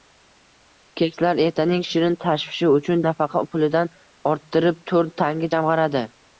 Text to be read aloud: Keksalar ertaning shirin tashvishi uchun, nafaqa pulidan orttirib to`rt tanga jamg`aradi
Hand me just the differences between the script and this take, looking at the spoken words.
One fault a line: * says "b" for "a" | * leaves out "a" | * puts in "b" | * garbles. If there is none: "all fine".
all fine